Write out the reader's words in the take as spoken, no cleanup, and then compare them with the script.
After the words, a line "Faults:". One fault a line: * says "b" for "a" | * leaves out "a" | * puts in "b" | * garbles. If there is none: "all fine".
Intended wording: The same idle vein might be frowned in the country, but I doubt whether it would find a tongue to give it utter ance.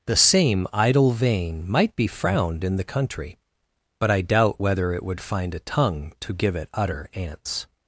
The same idle vein might be frowned in the country, but I doubt whether it would find a tongue to give it utter ance.
Faults:
all fine